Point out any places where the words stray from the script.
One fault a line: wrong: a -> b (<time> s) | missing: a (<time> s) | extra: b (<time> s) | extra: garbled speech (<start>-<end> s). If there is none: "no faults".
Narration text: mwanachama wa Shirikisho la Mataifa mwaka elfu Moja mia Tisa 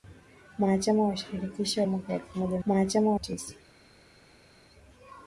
missing: la Mataifa (1.9 s)
wrong: mia -> mwanachama (2.6 s)